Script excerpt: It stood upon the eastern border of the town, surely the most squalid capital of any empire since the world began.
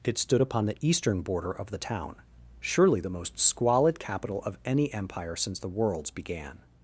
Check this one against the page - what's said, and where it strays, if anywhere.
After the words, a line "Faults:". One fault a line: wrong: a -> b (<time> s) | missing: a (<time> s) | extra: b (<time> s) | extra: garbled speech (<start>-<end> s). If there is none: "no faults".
It stood upon the eastern border of the town, surely the most squalid capital of any empire since the worlds began.
Faults:
wrong: world -> worlds (5.7 s)